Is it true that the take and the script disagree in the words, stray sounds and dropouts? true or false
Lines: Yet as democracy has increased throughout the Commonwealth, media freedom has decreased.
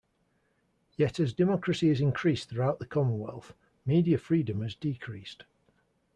false